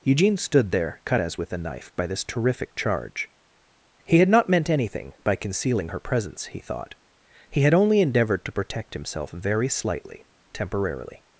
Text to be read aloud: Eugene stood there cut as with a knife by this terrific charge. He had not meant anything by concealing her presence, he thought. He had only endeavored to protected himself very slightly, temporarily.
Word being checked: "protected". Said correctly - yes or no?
no